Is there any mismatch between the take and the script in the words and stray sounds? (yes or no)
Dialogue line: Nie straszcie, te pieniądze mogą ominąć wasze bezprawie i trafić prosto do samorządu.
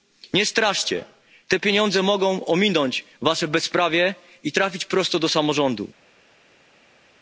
no